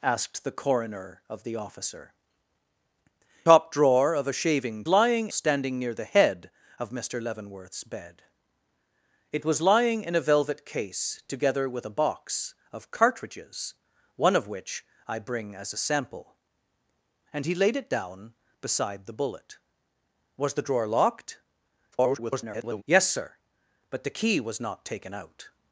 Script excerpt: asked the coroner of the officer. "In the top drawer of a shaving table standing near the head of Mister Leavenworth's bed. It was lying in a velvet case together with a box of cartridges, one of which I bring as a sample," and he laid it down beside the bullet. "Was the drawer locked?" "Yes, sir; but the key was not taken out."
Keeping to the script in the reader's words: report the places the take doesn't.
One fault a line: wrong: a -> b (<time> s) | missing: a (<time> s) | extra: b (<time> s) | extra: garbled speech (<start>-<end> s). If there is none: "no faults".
missing: In the (2.1 s)
wrong: table -> lying (4.9 s)
extra: garbled speech (21.9-22.8 s)